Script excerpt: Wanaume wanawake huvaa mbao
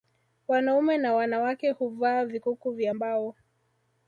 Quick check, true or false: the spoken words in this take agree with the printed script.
false